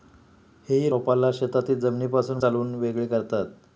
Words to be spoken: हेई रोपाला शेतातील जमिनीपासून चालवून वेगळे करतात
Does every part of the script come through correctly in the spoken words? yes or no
yes